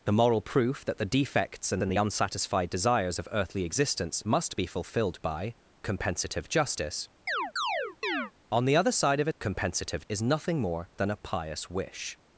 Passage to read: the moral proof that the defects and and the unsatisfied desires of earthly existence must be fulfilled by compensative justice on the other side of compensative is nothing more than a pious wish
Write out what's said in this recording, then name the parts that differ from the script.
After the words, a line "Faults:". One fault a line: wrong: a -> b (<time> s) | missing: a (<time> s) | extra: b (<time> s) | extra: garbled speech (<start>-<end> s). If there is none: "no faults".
the moral proof that the defects and and the unsatisfied desires of earthly existence must be fulfilled by compensative justice on the other side of compensative is nothing more than a pious wish
Faults:
no faults